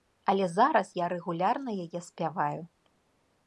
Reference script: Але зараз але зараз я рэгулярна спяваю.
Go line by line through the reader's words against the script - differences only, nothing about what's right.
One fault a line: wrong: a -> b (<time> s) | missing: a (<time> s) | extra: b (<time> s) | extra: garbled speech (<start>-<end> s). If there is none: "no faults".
missing: але зараз (0.9 s)
extra: яе (1.9 s)